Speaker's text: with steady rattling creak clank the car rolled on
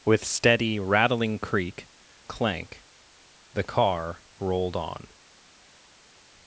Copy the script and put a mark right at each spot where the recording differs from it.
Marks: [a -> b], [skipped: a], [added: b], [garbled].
with steady rattling creak clank the car rolled on